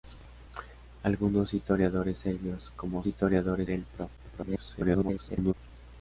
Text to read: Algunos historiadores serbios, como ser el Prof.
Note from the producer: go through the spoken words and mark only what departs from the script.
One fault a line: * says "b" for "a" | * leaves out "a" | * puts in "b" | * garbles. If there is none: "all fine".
* says "historiadores" for "ser"
* garbles